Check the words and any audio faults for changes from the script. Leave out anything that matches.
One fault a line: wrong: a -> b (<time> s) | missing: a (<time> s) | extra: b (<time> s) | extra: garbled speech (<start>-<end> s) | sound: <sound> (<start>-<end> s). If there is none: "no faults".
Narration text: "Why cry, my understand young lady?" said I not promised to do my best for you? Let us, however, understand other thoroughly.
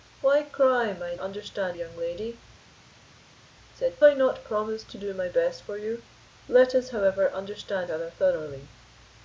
no faults